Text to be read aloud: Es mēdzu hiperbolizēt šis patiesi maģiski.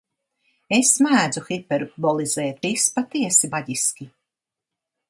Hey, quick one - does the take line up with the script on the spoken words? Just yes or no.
yes